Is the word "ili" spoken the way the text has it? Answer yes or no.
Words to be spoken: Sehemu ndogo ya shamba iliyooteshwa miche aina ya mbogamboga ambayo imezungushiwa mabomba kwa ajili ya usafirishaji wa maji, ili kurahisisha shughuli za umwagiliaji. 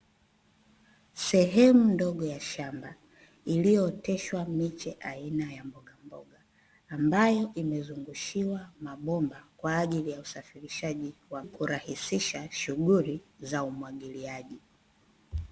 no